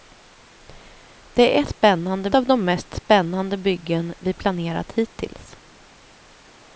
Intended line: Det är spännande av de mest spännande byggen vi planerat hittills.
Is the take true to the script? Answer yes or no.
yes